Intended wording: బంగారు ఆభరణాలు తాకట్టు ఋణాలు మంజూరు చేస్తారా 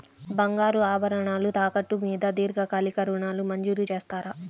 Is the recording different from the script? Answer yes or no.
yes